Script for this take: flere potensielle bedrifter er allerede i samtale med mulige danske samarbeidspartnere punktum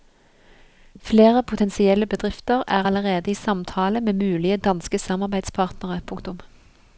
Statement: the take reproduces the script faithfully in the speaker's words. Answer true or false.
true